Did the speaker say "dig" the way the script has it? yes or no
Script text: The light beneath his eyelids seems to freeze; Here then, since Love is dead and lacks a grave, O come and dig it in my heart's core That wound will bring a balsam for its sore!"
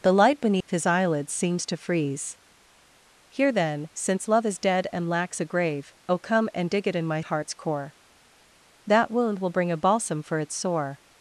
yes